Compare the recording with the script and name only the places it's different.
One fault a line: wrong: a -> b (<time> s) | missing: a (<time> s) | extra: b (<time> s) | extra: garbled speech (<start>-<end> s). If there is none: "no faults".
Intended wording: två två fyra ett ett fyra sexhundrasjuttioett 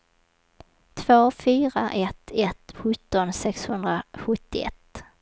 missing: två (1.3 s)
wrong: fyra -> sjutton (2.7 s)